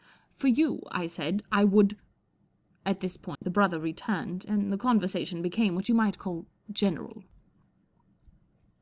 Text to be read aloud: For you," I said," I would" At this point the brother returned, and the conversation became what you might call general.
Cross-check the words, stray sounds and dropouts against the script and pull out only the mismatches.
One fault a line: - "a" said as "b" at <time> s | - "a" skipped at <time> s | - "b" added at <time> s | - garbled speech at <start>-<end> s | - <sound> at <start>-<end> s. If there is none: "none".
- dropout at 3.4-3.4 s